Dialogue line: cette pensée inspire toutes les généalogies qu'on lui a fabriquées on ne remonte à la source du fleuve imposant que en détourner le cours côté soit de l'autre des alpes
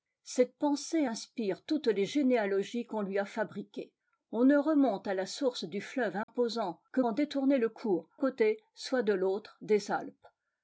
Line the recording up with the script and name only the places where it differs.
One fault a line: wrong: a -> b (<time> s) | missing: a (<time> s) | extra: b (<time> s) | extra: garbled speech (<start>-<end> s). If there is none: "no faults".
no faults